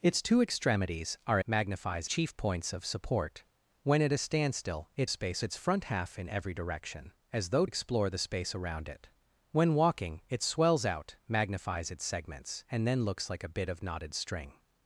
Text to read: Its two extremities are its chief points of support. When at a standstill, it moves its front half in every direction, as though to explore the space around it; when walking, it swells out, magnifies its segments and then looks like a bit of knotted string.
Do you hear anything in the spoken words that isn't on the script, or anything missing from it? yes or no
yes